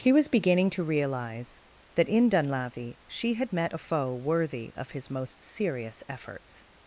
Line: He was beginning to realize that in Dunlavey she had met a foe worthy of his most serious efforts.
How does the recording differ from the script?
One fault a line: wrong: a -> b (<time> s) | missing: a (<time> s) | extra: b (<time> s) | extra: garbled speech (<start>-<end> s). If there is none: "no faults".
no faults